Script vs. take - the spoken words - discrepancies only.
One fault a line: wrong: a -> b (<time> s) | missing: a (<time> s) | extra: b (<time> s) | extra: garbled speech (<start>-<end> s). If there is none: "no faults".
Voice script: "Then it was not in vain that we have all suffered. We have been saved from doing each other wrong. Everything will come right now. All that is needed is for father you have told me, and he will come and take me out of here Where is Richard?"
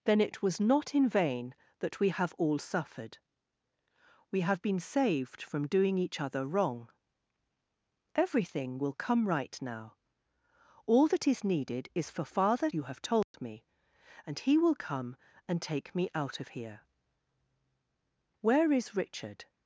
no faults